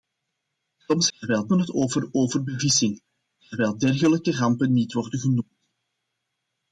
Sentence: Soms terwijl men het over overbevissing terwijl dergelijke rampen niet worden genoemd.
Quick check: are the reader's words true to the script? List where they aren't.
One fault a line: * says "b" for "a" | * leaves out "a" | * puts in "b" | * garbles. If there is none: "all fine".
all fine